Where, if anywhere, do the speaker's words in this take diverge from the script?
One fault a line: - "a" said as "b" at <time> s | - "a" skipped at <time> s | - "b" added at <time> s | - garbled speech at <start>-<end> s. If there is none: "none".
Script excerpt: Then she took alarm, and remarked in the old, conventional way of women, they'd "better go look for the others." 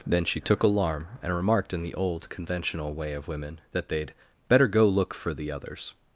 - "that" added at 3.7 s